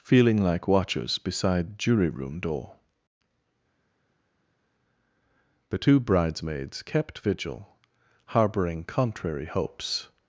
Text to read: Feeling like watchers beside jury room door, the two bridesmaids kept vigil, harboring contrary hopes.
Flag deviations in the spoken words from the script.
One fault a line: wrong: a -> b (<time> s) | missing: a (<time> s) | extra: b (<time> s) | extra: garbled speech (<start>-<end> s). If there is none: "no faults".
no faults